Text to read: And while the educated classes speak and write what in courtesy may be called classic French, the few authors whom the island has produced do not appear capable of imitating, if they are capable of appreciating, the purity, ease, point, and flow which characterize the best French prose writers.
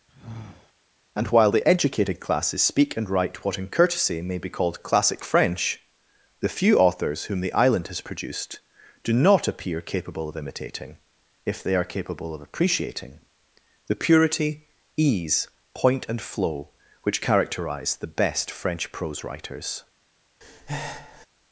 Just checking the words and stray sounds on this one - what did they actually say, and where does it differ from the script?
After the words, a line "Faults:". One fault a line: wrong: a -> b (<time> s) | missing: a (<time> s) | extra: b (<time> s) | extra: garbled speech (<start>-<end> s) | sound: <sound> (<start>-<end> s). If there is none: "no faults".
And while the educated classes speak and write what in courtesy may be called classic French, the few authors whom the island has produced do not appear capable of imitating, if they are capable of appreciating, the purity, ease, point, and flow which characterize the best French prose writers.
Faults:
sound: sigh (0.1-0.7 s)
sound: breath (20.4-21.3 s)